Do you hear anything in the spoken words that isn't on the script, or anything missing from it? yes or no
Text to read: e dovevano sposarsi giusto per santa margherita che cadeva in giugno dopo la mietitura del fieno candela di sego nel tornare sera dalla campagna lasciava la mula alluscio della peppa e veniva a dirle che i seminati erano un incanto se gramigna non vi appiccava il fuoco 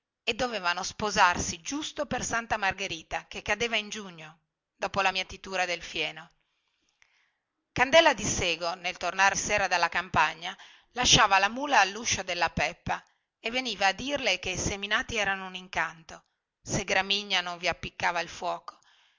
no